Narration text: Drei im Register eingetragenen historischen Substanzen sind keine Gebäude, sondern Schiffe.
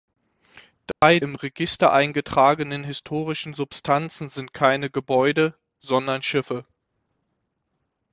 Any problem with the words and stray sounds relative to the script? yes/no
yes